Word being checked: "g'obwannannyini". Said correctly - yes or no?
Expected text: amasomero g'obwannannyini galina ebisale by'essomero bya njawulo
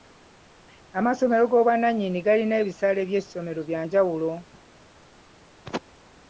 yes